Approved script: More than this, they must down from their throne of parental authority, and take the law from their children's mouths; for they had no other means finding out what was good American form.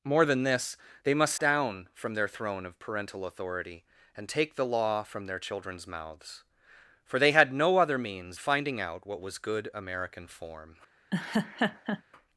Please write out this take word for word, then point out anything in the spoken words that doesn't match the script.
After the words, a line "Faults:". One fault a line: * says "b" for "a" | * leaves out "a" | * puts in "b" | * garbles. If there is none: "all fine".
More than this, they must down from their throne of parental authority, and take the law from their children's mouths; for they had no other means finding out what was good American form.
Faults:
all fine